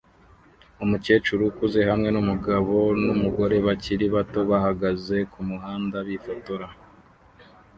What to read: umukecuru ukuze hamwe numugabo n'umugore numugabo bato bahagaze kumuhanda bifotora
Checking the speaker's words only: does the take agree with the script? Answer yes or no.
no